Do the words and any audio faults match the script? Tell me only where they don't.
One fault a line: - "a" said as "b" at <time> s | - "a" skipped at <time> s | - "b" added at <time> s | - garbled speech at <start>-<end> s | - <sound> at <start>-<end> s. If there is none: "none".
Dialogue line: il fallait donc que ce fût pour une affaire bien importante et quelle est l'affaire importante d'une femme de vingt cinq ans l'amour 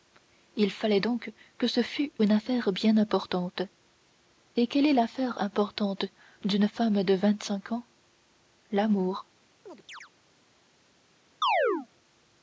- "pour" skipped at 2.1 s
- chirp at 9.7-10.1 s
- chirp at 11.4-11.9 s